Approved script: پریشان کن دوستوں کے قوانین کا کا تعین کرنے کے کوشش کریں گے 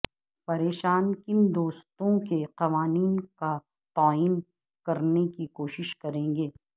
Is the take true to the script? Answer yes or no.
no